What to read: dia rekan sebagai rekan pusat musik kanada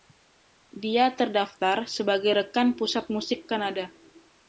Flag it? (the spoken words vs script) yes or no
yes